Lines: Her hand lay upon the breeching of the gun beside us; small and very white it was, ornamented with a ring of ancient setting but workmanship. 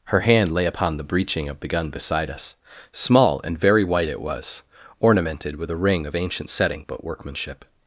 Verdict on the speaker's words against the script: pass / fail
pass